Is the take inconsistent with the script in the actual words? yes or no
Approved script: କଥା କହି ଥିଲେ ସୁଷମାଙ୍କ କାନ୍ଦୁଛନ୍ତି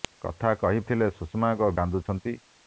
no